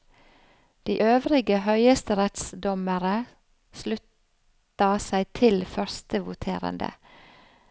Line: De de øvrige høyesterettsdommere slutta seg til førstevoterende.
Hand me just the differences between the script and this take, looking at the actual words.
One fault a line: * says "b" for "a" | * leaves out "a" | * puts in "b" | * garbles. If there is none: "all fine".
* leaves out "de"